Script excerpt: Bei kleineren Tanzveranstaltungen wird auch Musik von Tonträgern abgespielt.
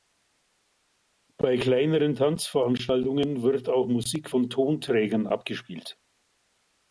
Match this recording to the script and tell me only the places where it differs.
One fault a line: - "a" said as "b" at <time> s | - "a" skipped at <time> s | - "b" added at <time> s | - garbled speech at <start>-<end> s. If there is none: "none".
none